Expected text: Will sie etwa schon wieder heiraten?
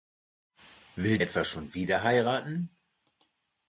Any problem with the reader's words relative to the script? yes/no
yes